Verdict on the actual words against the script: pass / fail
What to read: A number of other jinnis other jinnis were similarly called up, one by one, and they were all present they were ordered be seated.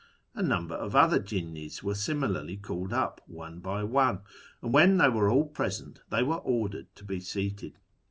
fail